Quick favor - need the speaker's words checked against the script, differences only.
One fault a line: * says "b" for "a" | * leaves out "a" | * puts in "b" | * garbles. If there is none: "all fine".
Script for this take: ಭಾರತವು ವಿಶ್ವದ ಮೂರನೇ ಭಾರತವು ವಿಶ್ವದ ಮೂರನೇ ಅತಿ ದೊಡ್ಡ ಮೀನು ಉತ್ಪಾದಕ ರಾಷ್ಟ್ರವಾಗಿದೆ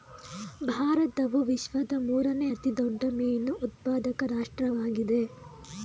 * leaves out "ಭಾರತವು ವಿಶ್ವದ ಮೂರನೇ"